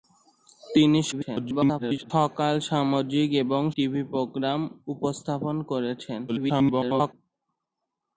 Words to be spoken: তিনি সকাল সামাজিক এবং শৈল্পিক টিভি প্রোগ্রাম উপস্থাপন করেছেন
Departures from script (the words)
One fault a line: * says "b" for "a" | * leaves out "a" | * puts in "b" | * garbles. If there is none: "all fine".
* garbles
* leaves out "শৈল্পিক"
* garbles